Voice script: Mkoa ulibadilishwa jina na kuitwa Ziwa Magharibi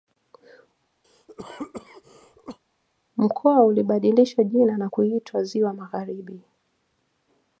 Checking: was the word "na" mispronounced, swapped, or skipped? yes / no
no